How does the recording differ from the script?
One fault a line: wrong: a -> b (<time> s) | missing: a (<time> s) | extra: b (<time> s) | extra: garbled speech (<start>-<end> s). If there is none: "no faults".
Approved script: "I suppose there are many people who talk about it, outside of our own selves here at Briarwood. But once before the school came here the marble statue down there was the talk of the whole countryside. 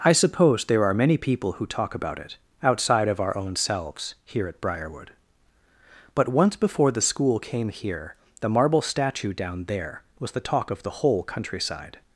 no faults